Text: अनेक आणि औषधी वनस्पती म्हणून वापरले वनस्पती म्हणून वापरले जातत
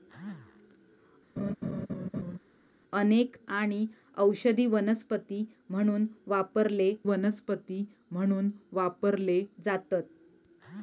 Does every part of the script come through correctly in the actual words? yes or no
yes